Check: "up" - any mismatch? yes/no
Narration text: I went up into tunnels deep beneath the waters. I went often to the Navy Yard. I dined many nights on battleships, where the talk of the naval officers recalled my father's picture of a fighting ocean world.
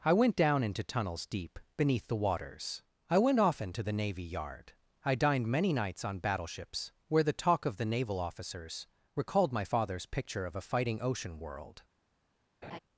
yes